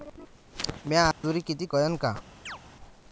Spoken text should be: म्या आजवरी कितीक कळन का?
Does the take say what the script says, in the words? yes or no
yes